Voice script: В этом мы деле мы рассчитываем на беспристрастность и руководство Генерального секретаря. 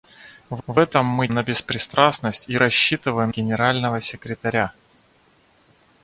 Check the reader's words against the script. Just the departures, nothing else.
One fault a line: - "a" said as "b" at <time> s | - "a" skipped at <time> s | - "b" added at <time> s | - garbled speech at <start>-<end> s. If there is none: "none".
- "в" added at 0.7 s
- "деле мы рассчитываем" skipped at 1.3 s
- "руководство" said as "рассчитываем" at 2.6 s